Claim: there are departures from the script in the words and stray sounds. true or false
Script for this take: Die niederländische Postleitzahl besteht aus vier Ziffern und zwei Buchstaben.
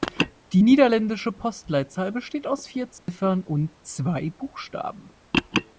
true